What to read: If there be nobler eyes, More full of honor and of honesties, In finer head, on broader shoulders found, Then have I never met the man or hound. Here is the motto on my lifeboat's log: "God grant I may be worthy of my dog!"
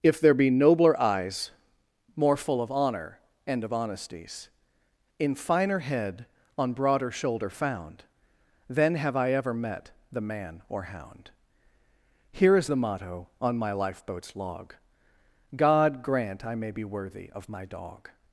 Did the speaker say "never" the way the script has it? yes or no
no